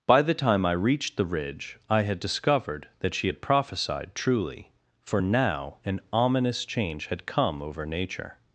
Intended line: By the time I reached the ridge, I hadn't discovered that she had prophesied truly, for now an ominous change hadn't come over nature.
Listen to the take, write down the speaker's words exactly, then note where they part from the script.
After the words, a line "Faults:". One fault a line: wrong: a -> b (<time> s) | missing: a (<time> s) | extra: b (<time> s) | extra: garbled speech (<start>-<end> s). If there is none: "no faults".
By the time I reached the ridge, I had discovered that she had prophesied truly, for now an ominous change had come over nature.
Faults:
wrong: hadn't -> had (2.0 s)
wrong: hadn't -> had (7.1 s)